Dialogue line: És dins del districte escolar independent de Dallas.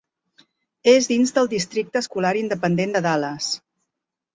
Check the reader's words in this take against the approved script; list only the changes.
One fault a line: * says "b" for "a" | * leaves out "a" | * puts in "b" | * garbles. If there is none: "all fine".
all fine